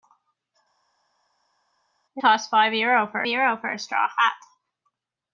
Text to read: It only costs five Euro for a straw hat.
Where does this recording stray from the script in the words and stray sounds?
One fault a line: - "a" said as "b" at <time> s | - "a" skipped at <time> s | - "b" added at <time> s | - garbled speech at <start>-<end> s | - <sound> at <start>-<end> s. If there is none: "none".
- "only" skipped at 2.2 s
- "Euro for" added at 3.2 s